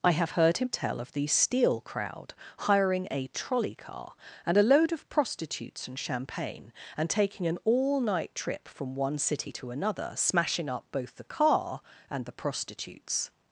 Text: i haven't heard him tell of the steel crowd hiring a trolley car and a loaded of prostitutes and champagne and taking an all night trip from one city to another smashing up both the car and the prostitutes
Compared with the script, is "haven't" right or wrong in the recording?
wrong